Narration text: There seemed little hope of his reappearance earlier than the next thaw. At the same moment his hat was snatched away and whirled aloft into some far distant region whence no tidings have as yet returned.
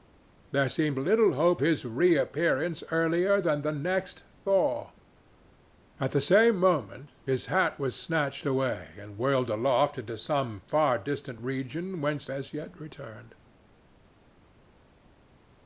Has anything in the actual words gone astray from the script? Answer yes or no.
yes